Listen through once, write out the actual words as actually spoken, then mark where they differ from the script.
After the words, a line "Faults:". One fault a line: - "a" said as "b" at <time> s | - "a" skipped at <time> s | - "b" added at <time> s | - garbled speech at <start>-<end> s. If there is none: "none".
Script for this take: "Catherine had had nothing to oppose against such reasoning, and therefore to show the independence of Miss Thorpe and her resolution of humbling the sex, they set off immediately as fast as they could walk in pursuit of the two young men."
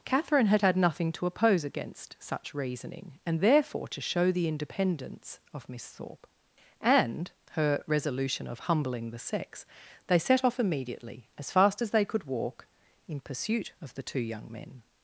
"Catherine had had nothing to oppose against such reasoning, and therefore to show the independence of Miss Thorpe and her resolution of humbling the sex, they set off immediately as fast as they could walk in pursuit of the two young men."
Faults:
none